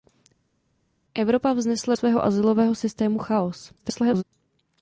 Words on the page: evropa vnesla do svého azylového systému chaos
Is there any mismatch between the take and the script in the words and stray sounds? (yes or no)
yes